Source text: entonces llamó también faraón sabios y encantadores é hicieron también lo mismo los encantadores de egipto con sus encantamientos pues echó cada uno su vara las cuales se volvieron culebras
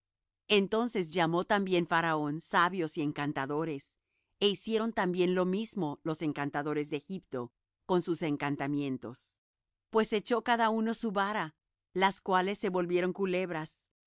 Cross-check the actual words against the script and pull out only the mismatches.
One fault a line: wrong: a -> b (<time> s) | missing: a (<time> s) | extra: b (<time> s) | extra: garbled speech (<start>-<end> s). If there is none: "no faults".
no faults